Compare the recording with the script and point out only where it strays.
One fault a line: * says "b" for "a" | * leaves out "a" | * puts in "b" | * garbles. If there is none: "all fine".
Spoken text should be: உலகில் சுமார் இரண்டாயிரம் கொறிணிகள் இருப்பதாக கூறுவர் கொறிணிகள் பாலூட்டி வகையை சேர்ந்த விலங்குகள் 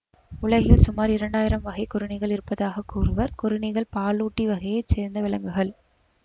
* puts in "வகை"